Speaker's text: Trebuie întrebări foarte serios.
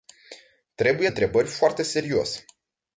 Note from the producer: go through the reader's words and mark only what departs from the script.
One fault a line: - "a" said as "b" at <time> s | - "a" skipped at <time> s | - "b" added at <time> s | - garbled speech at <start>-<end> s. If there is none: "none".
none